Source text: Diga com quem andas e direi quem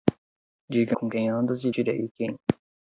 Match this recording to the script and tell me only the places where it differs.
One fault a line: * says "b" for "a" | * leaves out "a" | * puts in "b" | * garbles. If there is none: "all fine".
all fine